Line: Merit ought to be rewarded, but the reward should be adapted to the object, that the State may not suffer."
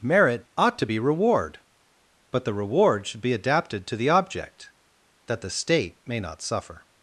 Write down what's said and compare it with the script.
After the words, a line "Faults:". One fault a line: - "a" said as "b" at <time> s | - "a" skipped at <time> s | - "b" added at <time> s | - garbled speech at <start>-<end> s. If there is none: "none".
Merit ought to be reward, but the reward should be adapted to the object, that the State may not suffer."
Faults:
- "rewarded" said as "reward" at 1.0 s